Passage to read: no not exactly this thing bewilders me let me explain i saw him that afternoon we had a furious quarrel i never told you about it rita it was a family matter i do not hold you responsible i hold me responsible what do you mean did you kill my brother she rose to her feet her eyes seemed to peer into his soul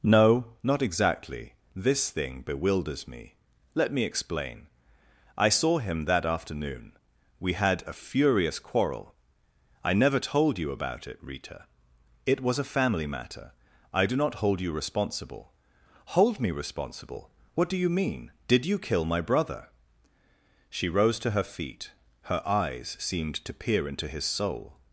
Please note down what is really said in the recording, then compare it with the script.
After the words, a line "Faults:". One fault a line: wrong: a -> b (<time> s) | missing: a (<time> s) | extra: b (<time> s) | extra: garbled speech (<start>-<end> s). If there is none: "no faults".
no not exactly this thing bewilders me let me explain i saw him that afternoon we had a furious quarrel i never told you about it rita it was a family matter i do not hold you responsible hold me responsible what do you mean did you kill my brother she rose to her feet her eyes seemed to peer into his soul
Faults:
missing: i (15.5 s)